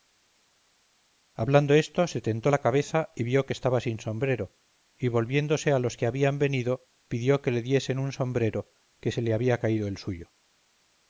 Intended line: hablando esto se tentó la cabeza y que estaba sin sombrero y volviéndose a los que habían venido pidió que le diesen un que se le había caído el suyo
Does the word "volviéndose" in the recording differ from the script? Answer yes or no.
no